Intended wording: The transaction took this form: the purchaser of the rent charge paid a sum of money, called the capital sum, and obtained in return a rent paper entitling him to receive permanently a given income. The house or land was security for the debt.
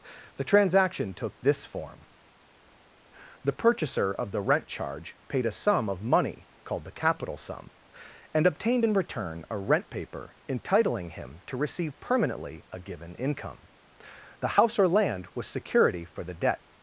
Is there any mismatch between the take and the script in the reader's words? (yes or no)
no